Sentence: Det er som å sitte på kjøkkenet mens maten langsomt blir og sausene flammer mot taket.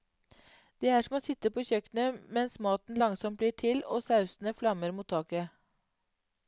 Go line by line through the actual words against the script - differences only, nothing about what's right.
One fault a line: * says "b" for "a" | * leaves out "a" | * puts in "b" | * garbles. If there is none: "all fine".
* puts in "til"